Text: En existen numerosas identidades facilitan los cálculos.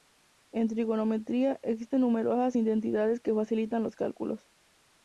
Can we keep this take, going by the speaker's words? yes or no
no